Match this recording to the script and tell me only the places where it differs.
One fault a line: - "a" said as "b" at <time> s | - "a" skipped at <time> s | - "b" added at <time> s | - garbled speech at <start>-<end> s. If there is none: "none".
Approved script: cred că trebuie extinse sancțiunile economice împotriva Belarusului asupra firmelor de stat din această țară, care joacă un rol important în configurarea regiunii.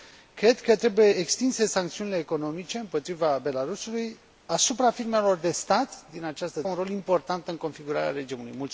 - "țară care joacă" skipped at 6.6 s